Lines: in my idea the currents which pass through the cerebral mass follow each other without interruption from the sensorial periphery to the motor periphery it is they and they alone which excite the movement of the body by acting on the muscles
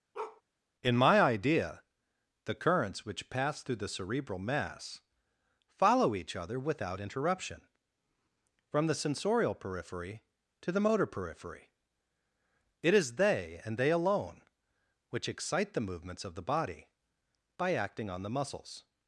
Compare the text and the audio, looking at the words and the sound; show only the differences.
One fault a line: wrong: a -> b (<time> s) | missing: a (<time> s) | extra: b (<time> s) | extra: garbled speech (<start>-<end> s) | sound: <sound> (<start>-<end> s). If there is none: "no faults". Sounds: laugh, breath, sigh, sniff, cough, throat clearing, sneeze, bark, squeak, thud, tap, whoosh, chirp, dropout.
sound: bark (0.1-0.4 s)
wrong: movement -> movements (15.9 s)